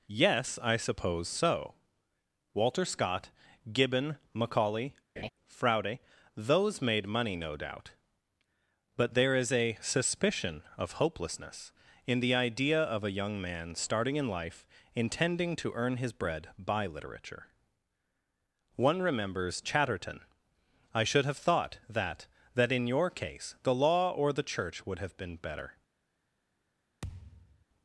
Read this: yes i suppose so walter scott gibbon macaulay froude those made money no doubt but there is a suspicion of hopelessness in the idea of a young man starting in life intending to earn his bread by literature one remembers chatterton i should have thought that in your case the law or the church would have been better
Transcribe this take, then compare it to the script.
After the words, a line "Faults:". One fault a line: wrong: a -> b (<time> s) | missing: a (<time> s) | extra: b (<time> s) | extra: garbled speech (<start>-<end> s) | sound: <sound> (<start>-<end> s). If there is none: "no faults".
yes i suppose so walter scott gibbon macaulay froude those made money no doubt but there is a suspicion of hopelessness in the idea of a young man starting in life intending to earn his bread by literature one remembers chatterton i should have thought that that in your case the law or the church would have been better
Faults:
sound: laugh (5.2-5.3 s)
extra: that (22.5 s)
sound: thud (27.0-27.7 s)